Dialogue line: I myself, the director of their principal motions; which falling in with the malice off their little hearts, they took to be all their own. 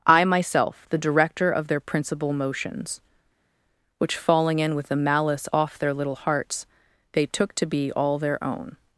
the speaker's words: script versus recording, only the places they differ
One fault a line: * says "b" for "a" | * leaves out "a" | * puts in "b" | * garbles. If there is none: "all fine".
all fine